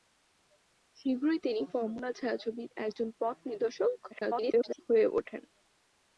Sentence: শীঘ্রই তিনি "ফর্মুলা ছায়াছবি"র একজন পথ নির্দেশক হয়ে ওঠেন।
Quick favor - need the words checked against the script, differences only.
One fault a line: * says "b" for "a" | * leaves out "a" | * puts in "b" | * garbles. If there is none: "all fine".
* garbles